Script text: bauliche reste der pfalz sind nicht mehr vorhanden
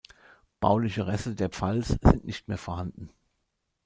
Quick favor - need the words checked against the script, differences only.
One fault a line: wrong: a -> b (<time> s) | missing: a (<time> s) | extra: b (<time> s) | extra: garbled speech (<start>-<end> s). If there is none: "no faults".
no faults